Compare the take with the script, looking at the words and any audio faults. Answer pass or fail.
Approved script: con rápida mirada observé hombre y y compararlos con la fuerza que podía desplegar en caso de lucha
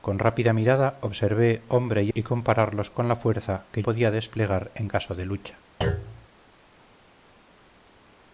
fail